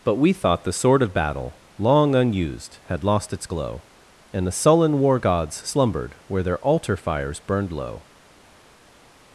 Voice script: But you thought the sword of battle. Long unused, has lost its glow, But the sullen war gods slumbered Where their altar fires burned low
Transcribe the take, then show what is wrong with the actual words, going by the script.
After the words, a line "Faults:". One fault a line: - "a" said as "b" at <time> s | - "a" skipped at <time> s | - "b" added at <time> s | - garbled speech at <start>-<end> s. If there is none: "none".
But we thought the sword of battle. Long unused, had lost its glow, And the sullen war gods slumbered Where their altar fires burned low
Faults:
- "you" said as "we" at 0.1 s
- "has" said as "had" at 2.9 s
- "But" said as "And" at 4.3 s